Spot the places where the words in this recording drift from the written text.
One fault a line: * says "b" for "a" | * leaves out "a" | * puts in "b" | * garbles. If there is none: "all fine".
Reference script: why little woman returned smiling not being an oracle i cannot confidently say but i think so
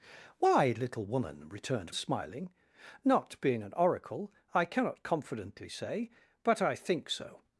all fine